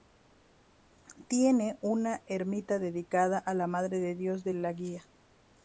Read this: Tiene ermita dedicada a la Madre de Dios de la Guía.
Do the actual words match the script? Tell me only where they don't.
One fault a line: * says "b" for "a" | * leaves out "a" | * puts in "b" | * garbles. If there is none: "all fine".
* puts in "una"